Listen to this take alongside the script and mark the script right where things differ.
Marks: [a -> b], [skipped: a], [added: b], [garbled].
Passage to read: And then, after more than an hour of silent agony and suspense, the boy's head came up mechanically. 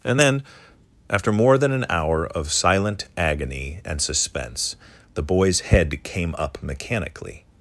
And then, after more than an hour of silent agony and suspense, the boy's head came up mechanically.